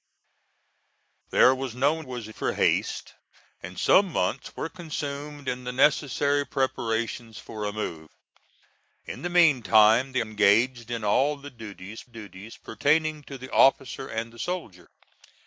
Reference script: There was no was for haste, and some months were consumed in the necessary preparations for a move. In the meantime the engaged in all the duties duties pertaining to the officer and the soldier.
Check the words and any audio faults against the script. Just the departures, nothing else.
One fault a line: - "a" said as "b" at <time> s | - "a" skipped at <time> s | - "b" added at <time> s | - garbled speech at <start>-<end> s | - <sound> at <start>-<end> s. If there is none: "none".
none